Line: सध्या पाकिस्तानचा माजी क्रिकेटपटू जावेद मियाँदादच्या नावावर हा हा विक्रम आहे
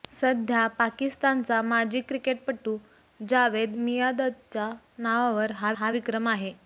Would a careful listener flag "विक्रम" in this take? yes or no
no